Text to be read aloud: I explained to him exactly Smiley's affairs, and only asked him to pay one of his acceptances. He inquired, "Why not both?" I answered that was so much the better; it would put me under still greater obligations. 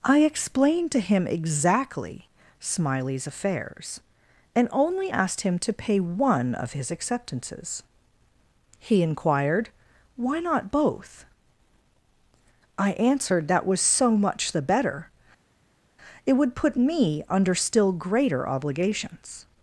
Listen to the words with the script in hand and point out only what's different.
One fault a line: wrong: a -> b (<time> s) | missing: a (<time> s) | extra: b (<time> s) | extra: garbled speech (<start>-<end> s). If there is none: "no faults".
no faults